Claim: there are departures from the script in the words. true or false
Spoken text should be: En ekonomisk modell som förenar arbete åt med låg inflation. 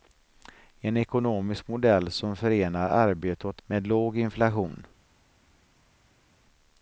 false